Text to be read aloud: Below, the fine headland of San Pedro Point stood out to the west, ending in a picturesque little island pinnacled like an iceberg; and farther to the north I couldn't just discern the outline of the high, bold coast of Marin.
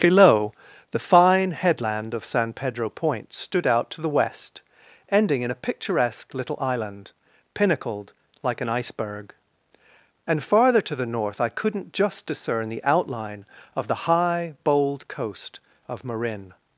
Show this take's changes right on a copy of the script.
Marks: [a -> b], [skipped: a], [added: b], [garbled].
Below, the fine headland of San Pedro Point stood out to the west, ending in a picturesque little island pinnacled like an iceberg; and farther to the north I couldn't just discern the outline of the high, bold coast of Marin.